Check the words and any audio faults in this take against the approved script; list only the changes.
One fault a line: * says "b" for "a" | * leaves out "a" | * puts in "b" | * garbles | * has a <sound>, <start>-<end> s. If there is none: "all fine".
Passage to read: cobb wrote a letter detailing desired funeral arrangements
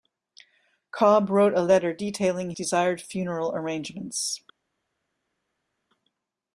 all fine